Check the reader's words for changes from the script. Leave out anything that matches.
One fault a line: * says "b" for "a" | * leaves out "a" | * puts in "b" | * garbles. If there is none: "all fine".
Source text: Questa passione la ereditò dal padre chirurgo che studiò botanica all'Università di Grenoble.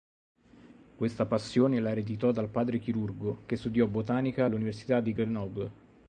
all fine